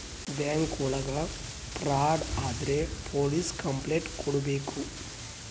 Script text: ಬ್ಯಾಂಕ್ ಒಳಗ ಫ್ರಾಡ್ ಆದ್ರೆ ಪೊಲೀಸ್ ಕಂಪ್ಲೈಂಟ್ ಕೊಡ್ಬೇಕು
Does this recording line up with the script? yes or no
yes